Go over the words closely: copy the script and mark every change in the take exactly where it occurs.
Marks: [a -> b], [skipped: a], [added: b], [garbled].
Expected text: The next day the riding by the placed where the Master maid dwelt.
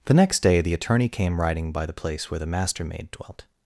The next day the [added: attorney came] riding by the [placed -> place] where the Master maid dwelt.